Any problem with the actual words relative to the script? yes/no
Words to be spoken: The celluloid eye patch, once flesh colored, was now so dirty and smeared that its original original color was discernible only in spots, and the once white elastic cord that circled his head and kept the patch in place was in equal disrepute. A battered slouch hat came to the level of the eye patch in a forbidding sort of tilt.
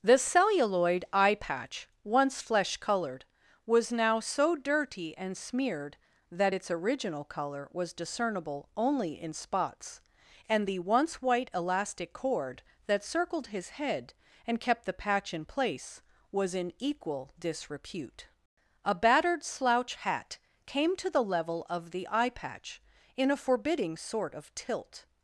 yes